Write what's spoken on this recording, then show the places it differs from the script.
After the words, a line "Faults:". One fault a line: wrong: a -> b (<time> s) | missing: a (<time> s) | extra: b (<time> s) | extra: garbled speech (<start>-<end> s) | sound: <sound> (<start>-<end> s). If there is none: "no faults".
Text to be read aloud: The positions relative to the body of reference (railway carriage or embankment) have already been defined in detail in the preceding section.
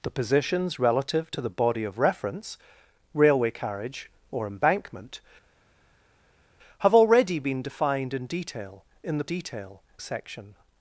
The positions relative to the body of reference (railway carriage or embankment) have already been defined in detail in the detail section.
Faults:
wrong: preceding -> detail (9.2 s)